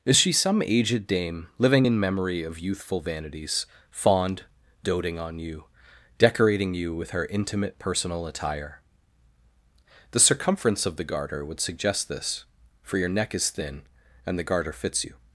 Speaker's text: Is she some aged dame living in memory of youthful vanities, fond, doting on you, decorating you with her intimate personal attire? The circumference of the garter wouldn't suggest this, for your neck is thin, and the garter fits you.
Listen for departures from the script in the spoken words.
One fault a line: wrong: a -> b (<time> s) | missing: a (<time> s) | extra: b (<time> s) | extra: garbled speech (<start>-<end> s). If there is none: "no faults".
wrong: wouldn't -> would (11.4 s)